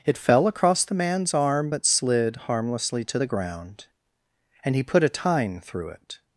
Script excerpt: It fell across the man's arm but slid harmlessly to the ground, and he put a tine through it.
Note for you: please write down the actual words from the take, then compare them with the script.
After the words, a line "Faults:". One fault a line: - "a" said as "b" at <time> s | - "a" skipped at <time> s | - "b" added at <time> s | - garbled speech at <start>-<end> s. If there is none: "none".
It fell across the man's arm but slid harmlessly to the ground, and he put a tine through it.
Faults:
none